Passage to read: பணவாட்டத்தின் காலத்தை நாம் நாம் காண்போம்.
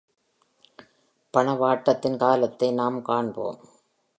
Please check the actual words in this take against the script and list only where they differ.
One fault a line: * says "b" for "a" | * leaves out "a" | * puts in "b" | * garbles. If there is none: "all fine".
* leaves out "நாம்"